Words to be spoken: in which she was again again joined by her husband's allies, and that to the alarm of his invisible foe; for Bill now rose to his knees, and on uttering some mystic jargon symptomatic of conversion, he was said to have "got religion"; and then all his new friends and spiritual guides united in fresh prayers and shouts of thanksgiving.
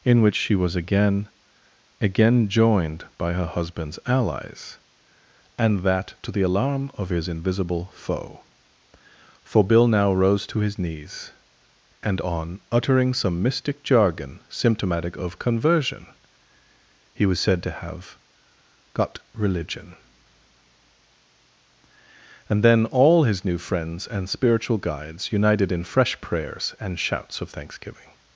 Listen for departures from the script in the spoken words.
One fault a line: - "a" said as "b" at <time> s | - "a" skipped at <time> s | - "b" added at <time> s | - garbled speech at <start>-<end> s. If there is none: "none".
none